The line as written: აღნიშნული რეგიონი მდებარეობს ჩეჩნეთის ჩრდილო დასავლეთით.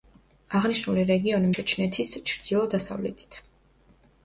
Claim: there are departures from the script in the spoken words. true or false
true